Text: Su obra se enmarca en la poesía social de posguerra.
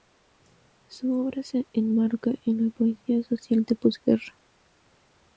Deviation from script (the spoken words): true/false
false